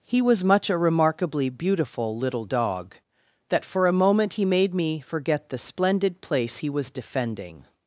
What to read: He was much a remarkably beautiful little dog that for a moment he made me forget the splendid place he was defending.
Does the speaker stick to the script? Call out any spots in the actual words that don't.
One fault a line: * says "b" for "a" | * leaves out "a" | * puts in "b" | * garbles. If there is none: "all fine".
all fine